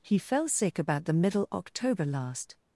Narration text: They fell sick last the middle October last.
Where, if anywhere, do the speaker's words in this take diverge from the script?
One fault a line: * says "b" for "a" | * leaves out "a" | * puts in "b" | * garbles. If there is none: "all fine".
* says "He" for "They"
* says "about" for "last"